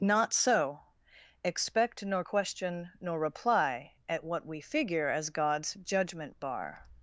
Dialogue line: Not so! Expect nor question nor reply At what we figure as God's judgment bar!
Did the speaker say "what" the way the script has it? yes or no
yes